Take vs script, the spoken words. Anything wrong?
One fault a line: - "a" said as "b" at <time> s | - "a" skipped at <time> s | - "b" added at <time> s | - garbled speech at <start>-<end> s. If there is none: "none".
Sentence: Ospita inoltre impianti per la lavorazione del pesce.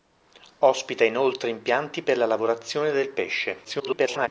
- garbled speech at 3.6-4.3 s